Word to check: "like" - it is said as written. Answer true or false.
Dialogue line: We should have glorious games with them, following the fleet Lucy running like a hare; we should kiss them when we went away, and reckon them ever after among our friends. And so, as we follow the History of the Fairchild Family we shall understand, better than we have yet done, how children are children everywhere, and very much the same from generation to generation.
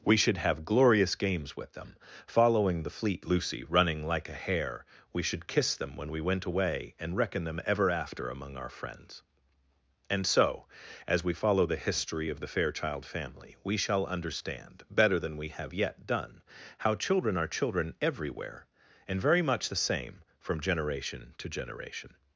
true